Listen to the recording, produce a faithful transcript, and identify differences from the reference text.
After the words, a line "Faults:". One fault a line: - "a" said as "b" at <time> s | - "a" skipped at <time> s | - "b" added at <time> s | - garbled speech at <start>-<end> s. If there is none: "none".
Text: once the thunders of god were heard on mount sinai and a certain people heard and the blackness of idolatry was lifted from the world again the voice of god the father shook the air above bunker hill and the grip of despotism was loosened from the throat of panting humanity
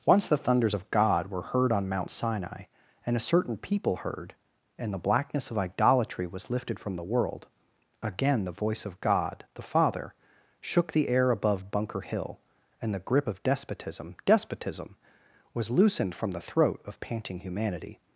once the thunders of god were heard on mount sinai and a certain people heard and the blackness of idolatry was lifted from the world again the voice of god the father shook the air above bunker hill and the grip of despotism despotism was loosened from the throat of panting humanity
Faults:
- "despotism" added at 14.3 s